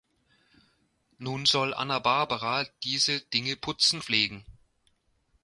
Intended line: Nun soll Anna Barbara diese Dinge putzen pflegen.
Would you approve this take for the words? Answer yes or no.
yes